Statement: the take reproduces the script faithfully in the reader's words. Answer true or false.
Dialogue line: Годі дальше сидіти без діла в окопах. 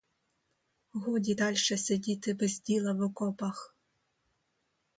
true